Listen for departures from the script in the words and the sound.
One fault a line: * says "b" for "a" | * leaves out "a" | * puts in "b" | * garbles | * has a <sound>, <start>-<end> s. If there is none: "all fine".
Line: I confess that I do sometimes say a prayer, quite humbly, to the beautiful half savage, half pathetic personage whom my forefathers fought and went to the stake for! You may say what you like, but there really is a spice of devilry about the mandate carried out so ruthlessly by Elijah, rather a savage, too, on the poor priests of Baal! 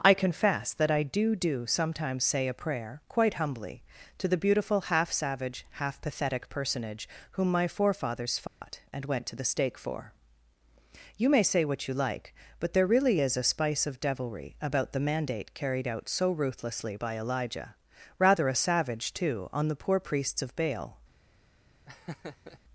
* puts in "do"
* has a dropout, 8.5-8.6 s
* has a laugh, 21.9-22.6 s